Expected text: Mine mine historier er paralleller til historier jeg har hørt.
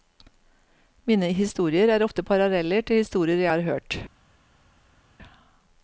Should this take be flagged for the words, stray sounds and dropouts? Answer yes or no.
yes